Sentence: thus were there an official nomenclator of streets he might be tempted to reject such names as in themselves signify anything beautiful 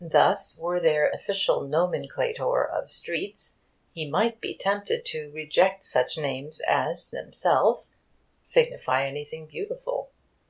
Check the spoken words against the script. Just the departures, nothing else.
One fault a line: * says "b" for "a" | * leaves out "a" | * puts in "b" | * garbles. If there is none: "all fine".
* leaves out "an"
* leaves out "in"